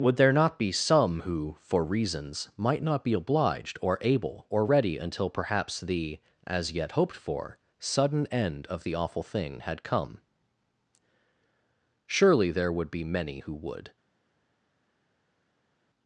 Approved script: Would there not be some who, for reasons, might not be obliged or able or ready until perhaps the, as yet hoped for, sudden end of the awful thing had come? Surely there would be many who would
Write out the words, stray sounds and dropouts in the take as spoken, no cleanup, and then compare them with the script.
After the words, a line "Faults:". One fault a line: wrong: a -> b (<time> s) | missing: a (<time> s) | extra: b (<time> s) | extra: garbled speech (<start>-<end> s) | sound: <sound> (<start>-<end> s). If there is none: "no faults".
Would there not be some who, for reasons, might not be obliged or able or ready until perhaps the, as yet hoped for, sudden end of the awful thing had come? Surely there would be many who would
Faults:
no faults